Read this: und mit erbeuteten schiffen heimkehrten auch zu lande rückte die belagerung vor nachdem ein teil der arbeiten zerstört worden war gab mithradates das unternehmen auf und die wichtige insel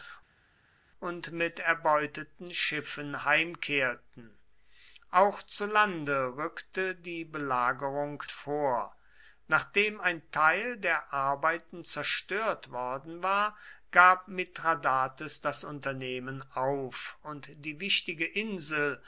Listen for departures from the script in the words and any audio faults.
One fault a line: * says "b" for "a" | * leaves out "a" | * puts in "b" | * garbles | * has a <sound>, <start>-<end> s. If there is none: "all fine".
all fine